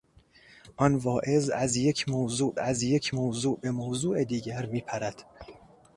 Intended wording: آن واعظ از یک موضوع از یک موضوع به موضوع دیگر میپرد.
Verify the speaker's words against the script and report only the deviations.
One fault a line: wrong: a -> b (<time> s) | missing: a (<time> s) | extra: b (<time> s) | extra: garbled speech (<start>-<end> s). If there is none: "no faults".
no faults